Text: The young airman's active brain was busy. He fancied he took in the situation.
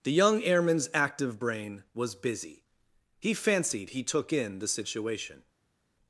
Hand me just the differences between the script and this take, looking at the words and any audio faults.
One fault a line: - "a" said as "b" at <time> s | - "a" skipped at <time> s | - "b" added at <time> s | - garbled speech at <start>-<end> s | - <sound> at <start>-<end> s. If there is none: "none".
none